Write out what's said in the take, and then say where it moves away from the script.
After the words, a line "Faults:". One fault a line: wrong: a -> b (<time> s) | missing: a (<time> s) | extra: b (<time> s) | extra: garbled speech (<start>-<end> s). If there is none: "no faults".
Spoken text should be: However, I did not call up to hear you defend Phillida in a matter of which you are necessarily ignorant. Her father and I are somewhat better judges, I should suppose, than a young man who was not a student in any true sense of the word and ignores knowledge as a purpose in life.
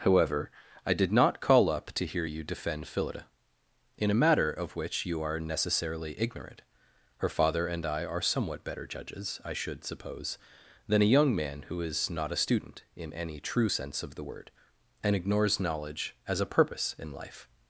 However, I did not call up to hear you defend Phillida in a matter of which you are necessarily ignorant. Her father and I are somewhat better judges, I should suppose, than a young man who is not a student in any true sense of the word and ignores knowledge as a purpose in life.
Faults:
wrong: was -> is (11.8 s)